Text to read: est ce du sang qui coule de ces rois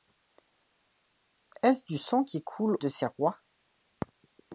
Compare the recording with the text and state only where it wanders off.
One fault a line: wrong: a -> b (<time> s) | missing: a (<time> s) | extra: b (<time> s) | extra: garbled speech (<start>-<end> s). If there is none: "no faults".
no faults